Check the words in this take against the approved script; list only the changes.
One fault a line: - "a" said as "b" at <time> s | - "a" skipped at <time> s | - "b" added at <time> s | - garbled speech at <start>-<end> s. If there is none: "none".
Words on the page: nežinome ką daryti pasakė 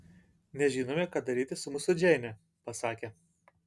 - "su mūsų džeine" added at 1.6 s